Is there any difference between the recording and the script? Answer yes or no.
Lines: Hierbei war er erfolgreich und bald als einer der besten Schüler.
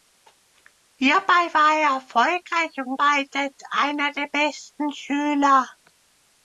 no